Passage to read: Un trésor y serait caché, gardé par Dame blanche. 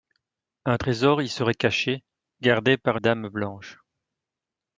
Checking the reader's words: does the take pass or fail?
pass